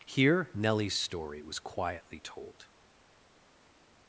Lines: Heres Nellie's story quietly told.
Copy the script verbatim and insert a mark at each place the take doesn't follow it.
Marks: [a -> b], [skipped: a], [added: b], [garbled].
[Heres -> Here] Nellie's story [added: was] quietly told.